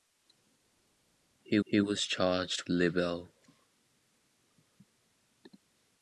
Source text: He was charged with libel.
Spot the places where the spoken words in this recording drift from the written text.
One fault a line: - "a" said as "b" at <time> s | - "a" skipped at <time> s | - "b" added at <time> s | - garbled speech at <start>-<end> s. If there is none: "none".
- "he" added at 1.6 s
- "with" skipped at 2.6 s